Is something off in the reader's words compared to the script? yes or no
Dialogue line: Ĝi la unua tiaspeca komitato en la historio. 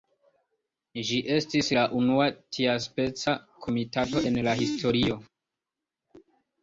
yes